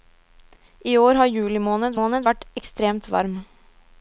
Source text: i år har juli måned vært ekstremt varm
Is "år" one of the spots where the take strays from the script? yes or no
no